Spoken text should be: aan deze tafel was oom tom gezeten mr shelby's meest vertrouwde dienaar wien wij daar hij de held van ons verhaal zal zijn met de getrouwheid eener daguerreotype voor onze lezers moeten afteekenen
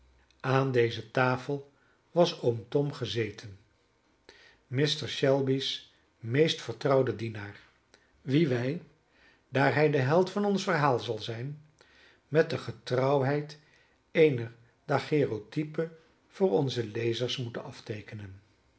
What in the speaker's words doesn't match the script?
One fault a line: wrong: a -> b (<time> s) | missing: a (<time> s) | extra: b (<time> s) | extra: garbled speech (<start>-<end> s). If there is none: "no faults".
no faults